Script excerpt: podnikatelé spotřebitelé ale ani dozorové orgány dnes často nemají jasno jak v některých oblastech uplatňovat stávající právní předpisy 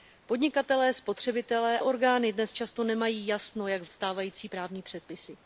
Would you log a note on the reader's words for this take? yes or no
yes